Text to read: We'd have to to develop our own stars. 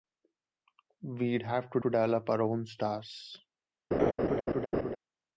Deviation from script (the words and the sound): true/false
true